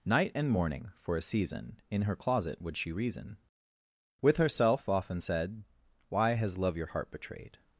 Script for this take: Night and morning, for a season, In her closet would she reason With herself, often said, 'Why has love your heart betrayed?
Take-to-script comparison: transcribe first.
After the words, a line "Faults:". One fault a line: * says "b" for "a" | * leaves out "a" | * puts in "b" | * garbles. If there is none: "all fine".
Night and morning, for a season, In her closet would she reason With herself, often said, 'Why has love your heart betrayed?
Faults:
all fine